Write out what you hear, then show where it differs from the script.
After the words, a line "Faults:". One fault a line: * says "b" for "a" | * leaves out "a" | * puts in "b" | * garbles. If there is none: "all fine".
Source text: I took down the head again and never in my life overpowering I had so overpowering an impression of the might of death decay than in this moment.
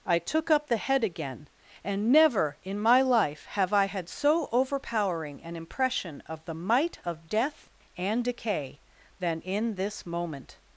I took up the head again and never in my life have I had so overpowering an impression of the might of death and decay than in this moment.
Faults:
* says "up" for "down"
* says "have" for "overpowering"
* puts in "and"